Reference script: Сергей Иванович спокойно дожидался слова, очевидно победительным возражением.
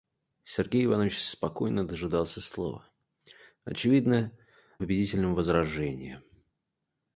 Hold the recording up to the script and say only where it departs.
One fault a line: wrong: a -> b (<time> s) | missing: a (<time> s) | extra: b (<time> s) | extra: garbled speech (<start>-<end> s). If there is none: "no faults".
no faults